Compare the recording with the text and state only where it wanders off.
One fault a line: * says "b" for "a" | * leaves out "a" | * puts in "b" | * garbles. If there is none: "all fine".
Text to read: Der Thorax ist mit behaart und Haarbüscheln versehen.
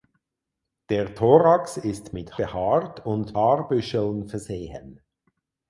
all fine